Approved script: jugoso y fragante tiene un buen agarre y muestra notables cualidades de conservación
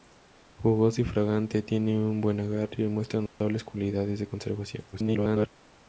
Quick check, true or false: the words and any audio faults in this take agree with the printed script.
false